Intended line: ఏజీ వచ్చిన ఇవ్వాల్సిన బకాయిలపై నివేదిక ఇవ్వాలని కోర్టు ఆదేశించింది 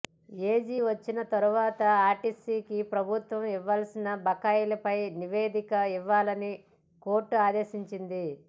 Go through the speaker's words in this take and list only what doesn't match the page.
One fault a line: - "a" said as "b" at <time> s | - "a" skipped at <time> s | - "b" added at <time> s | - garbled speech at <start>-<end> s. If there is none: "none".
- "తర్వాత ఆర్టీసీకి ప్రభుత్వం" added at 1.3 s